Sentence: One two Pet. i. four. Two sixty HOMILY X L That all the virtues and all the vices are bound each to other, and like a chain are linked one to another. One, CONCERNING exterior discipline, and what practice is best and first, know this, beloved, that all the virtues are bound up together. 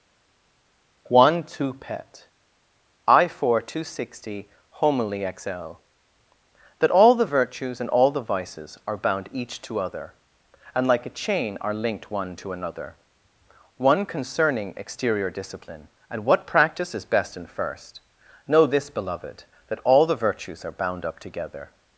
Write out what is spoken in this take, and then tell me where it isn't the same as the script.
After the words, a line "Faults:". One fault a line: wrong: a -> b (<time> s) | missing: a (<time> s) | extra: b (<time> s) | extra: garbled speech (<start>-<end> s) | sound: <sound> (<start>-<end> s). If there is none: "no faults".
One two Pet. i. four. Two sixty HOMILY X L That all the virtues and all the vices are bound each to other, and like a chain are linked one to another. One, CONCERNING exterior discipline, and what practice is best and first, know this, beloved, that all the virtues are bound up together.
Faults:
no faults